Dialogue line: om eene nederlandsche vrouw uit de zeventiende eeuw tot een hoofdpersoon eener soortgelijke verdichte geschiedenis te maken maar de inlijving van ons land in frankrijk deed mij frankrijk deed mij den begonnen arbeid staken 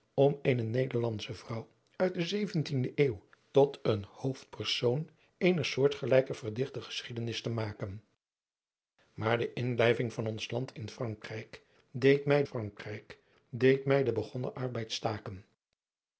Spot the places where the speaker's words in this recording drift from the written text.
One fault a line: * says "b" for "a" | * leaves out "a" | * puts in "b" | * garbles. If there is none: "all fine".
all fine